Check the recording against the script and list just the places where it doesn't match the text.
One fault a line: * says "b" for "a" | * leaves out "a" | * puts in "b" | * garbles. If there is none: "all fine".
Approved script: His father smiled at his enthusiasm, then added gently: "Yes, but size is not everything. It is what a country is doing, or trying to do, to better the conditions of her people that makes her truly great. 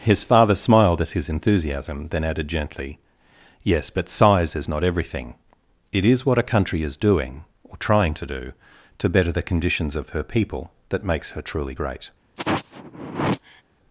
all fine